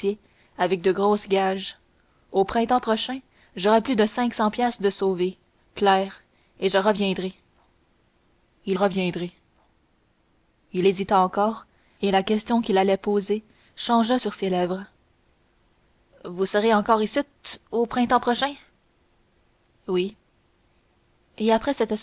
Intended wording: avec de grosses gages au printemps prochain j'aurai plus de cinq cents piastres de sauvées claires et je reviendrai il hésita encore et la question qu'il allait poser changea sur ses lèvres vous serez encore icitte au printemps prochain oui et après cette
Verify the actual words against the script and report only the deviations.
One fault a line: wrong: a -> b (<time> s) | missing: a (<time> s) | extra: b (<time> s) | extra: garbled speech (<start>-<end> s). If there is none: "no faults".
extra: reviendrai il (8.7 s)